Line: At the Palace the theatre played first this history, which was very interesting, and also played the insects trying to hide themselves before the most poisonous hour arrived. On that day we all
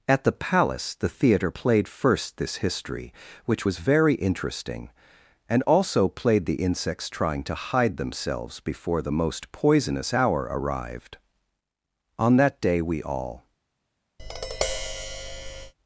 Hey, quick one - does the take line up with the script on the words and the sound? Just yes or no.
no